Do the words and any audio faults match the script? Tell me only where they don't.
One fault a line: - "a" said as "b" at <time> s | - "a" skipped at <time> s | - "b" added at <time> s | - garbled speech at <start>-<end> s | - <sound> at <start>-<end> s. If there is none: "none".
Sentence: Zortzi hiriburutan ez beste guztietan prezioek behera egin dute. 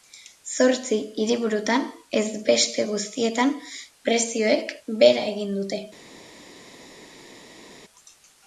none